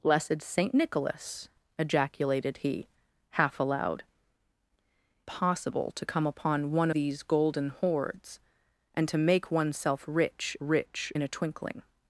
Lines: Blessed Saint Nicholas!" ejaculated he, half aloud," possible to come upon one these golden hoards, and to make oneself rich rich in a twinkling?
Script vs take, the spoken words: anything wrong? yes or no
no